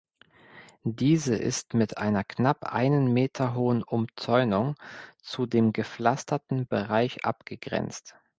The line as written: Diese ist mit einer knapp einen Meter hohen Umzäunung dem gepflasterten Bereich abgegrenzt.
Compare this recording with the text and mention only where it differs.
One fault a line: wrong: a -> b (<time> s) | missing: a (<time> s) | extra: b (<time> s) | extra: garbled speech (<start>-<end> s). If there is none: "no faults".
extra: zu (5.2 s)